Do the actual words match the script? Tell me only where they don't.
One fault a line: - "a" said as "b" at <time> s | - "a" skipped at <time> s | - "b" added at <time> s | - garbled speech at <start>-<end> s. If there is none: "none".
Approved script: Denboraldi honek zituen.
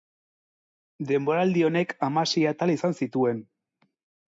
- "hamasei atal izan" added at 2.1 s